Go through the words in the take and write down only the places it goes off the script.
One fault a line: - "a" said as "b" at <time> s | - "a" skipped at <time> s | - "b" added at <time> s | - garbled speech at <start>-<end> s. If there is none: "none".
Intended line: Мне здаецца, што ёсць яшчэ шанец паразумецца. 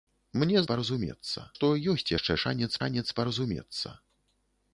- "здаецца" said as "паразумецца" at 0.7 s
- "шанец" added at 2.8 s